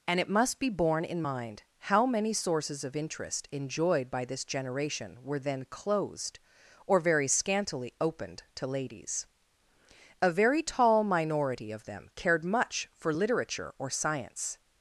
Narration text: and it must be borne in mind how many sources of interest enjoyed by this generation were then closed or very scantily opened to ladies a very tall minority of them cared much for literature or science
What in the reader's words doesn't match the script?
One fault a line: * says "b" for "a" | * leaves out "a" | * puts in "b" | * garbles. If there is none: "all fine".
all fine